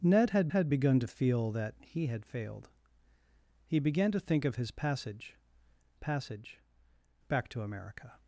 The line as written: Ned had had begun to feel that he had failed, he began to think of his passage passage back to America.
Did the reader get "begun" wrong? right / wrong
right